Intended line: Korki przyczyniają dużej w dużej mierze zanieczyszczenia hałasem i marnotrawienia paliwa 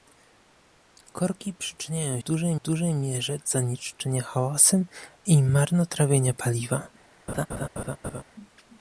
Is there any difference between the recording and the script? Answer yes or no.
no